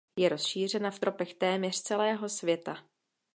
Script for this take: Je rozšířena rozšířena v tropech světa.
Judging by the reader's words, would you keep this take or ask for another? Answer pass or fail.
fail